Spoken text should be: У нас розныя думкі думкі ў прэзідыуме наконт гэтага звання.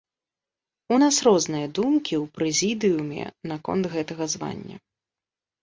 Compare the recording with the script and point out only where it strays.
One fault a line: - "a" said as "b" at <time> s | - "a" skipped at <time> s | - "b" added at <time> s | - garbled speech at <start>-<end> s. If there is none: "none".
- "думкі" skipped at 2.1 s